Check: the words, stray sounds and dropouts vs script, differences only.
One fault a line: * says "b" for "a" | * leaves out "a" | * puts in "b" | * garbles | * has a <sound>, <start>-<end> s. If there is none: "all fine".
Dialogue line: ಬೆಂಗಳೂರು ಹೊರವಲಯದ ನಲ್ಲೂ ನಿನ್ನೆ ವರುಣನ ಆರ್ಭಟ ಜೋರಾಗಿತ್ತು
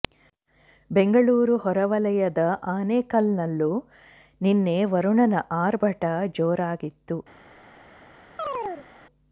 * puts in "ಆನೇಕಲ್"
* has a chirp, 8.4-8.9 s